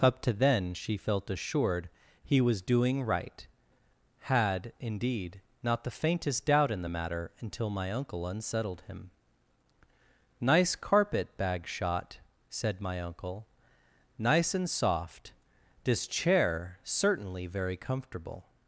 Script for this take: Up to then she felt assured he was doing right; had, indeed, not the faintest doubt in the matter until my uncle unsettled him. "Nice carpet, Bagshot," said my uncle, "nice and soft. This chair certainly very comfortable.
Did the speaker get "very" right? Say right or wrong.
right